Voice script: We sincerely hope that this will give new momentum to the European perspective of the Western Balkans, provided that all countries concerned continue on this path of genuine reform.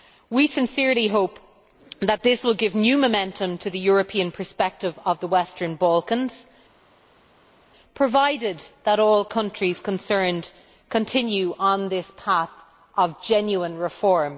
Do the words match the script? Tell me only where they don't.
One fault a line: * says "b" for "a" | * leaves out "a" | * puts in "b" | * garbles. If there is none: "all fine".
all fine